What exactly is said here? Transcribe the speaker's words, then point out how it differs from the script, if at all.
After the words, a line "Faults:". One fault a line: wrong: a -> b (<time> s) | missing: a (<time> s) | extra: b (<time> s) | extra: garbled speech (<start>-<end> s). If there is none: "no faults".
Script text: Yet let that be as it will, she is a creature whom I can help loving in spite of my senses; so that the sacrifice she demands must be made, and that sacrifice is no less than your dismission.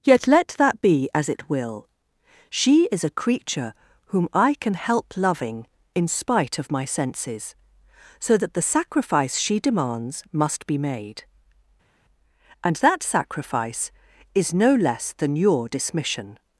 Yet let that be as it will, she is a creature whom I can help loving in spite of my senses; so that the sacrifice she demands must be made, and that sacrifice is no less than your dismission.
Faults:
no faults